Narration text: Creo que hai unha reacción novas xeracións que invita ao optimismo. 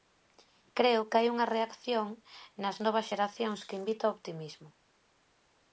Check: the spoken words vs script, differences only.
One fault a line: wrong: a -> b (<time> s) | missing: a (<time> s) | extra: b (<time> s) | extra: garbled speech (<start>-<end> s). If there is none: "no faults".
extra: nas (2.6 s)